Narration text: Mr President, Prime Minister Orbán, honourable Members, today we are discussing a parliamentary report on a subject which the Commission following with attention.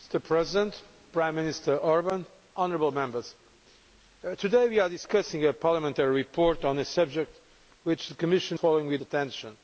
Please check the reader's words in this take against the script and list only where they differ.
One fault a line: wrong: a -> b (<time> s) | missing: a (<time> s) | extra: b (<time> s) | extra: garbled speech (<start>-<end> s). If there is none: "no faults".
no faults